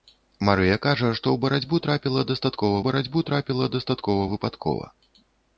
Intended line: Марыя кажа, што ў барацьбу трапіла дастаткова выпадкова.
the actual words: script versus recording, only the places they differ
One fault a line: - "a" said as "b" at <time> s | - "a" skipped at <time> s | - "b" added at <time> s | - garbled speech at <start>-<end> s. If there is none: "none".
- "барацьбу трапіла дастаткова" added at 2.9 s